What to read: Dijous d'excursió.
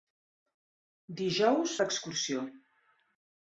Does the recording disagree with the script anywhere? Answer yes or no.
no